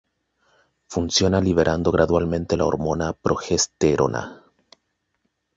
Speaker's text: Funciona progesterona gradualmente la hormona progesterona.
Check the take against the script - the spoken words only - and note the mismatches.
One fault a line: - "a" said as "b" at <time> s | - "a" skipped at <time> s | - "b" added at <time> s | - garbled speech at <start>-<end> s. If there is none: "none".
- "progesterona" said as "liberando" at 1.4 s